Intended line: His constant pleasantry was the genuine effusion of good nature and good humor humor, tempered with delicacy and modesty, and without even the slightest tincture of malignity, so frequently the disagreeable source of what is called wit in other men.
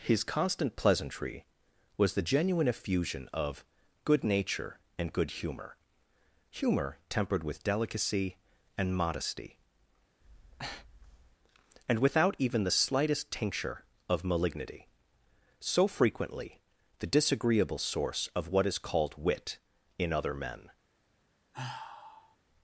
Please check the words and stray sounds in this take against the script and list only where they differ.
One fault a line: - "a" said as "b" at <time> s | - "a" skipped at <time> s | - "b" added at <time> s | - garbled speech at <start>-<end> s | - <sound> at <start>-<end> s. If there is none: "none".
- breath at 10.2-11.4 s
- sigh at 21.5-22.4 s